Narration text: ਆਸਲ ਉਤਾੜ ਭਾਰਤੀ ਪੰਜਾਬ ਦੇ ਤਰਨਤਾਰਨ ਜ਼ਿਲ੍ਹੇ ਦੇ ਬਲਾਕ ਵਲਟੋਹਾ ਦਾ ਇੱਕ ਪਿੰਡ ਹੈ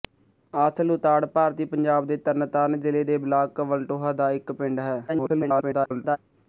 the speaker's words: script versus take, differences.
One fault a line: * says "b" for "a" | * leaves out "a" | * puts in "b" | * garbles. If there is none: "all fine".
* garbles